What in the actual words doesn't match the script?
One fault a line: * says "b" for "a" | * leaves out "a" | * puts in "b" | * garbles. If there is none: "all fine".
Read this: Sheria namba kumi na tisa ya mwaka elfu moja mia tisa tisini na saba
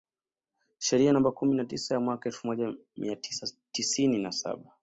all fine